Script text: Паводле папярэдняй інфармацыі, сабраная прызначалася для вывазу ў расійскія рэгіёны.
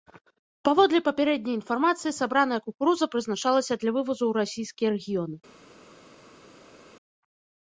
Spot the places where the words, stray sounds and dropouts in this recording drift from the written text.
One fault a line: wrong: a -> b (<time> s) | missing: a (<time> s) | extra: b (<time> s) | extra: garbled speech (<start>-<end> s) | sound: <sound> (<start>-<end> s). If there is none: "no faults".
extra: кукуруза (2.7 s)